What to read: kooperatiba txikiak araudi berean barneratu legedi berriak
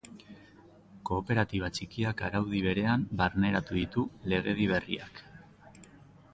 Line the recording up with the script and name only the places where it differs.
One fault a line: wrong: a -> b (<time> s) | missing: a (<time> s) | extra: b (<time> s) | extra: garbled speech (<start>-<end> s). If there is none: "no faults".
extra: ditu (3.8 s)